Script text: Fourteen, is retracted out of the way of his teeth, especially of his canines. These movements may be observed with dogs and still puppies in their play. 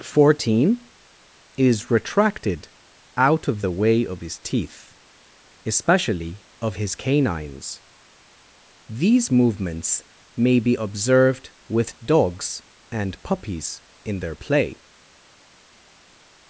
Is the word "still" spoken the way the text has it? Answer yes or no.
no